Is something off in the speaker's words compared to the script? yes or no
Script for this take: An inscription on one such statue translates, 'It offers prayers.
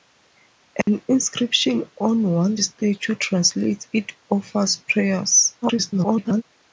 yes